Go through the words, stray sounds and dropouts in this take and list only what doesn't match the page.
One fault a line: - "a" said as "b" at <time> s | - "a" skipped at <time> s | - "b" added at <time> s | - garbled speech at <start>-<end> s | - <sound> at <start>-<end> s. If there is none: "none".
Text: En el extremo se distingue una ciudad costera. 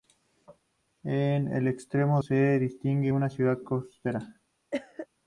- cough at 4.7-5.1 s